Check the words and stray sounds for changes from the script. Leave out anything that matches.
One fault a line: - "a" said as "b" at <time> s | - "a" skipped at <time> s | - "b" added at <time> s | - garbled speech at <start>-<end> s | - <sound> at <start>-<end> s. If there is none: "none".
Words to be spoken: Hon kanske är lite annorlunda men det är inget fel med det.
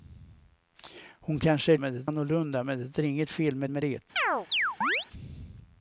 - "lite" said as "men" at 1.8 s
- "med" added at 3.7 s
- chirp at 4.2-5.1 s